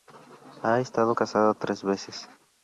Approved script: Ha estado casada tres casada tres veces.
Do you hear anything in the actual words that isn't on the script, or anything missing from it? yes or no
yes